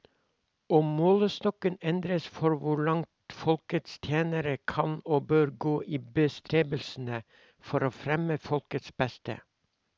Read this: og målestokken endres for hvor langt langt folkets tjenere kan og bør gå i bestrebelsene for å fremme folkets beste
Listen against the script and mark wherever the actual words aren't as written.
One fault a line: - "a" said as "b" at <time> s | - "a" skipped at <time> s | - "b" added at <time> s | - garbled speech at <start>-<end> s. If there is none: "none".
- "langt" skipped at 3.4 s